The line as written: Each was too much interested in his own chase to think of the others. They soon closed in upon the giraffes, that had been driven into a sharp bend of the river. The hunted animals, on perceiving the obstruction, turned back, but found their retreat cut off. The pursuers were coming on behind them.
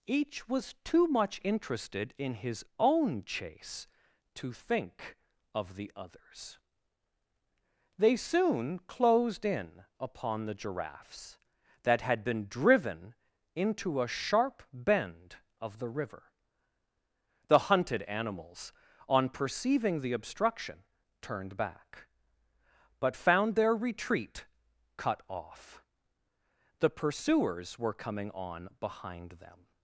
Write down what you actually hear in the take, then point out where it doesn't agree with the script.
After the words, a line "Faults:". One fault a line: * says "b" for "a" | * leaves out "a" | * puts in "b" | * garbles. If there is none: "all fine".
Each was too much interested in his own chase to think of the others. They soon closed in upon the giraffes, that had been driven into a sharp bend of the river. The hunted animals, on perceiving the obstruction, turned back, but found their retreat cut off. The pursuers were coming on behind them.
Faults:
all fine